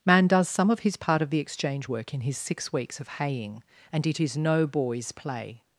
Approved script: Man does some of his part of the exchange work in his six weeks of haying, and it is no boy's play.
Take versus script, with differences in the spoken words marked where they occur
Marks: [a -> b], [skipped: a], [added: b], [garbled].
Man does some of his part of the exchange work in his six weeks of haying, and it is no boy's play.